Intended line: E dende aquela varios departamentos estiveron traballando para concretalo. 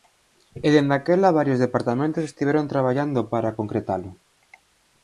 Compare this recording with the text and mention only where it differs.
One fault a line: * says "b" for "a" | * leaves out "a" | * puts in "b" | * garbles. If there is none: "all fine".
all fine